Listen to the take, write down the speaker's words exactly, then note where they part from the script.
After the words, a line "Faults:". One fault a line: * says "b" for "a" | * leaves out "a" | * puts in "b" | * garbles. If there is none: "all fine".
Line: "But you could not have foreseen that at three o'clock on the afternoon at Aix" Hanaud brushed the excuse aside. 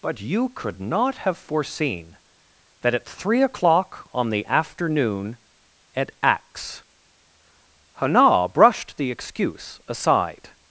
"But you could not have foreseen that at three o'clock on the afternoon at Aix" Hanaud brushed the excuse aside.
Faults:
all fine